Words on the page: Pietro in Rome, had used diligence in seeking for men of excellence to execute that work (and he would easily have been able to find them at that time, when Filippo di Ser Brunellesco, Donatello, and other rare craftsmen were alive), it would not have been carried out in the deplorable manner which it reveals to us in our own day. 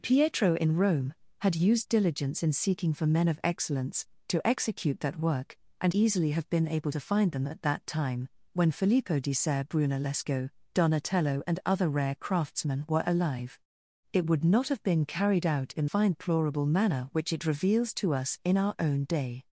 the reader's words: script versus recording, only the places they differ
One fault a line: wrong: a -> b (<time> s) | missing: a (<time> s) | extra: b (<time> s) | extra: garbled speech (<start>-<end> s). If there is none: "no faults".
missing: he would (5.9 s)
wrong: the -> find (15.8 s)